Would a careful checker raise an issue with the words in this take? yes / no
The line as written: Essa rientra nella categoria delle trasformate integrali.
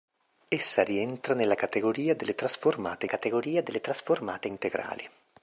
yes